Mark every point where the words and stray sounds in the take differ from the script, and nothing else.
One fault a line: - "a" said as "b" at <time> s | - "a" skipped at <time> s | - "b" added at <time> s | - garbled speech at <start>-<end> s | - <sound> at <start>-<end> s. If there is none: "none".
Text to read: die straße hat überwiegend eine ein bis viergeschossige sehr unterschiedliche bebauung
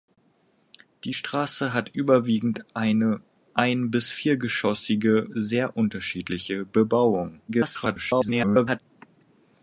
- garbled speech at 7.5-8.8 s